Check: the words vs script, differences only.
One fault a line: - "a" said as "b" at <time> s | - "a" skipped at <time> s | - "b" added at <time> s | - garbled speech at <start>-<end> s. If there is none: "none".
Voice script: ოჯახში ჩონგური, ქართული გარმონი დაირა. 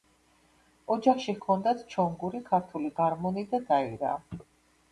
- "ჰქონდათ" added at 1.4 s
- "და" added at 3.6 s